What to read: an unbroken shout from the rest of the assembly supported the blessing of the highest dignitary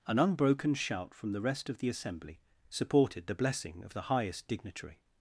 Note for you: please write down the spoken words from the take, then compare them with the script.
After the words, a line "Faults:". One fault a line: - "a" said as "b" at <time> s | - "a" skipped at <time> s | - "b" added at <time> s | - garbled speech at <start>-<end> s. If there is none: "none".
an unbroken shout from the rest of the assembly supported the blessing of the highest dignitary
Faults:
none